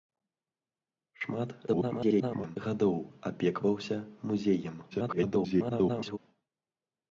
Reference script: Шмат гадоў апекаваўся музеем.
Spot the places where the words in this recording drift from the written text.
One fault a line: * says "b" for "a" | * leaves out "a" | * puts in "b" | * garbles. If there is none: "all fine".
* garbles
* garbles